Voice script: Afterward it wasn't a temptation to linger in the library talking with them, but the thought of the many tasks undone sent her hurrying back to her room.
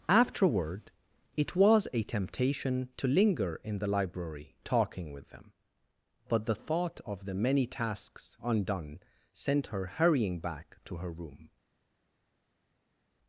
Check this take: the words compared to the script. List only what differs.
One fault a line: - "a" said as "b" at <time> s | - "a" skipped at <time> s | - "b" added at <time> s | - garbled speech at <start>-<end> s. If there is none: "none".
- "wasn't" said as "was" at 1.6 s